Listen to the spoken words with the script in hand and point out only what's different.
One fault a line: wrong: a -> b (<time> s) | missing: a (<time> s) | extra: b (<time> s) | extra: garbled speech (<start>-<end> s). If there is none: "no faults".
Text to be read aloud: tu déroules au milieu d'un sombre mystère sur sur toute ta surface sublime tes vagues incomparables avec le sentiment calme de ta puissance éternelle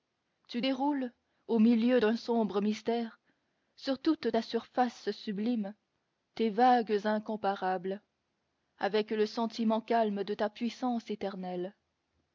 missing: sur (4.0 s)